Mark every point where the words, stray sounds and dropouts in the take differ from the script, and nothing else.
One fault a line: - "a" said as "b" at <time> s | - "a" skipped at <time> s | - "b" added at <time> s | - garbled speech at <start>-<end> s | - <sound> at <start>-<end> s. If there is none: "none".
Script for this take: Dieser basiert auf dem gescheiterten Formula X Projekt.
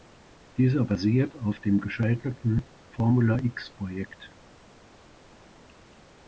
none